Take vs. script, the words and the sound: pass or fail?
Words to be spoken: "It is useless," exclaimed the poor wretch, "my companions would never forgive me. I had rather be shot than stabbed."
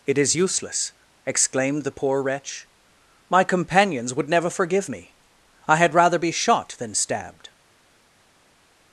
pass